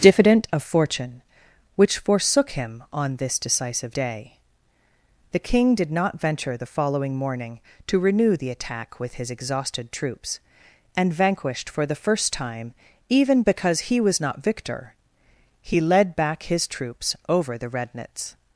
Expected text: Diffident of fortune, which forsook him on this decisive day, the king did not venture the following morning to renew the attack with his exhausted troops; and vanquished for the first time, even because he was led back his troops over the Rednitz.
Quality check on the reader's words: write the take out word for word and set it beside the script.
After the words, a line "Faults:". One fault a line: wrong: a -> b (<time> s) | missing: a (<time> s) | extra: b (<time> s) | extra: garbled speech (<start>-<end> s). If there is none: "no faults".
Diffident of fortune, which forsook him on this decisive day, the king did not venture the following morning to renew the attack with his exhausted troops; and vanquished for the first time, even because he was not victor, he led back his troops over the Rednitz.
Faults:
extra: not victor he (14.2 s)